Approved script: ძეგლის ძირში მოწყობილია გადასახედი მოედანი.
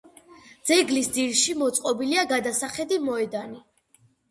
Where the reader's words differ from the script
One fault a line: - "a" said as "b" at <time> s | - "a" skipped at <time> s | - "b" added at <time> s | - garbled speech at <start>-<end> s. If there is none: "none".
none